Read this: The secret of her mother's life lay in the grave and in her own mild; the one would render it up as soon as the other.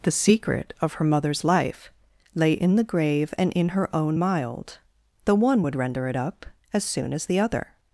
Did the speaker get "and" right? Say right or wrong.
right